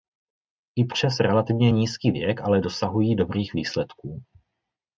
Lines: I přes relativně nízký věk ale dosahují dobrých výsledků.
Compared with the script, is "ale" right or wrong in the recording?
right